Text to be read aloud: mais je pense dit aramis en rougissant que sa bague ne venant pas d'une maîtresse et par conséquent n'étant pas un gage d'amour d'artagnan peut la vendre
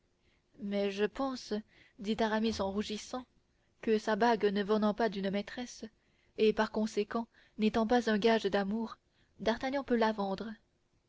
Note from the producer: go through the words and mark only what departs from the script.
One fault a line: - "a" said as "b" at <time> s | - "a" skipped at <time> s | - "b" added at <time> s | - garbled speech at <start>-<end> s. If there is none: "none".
none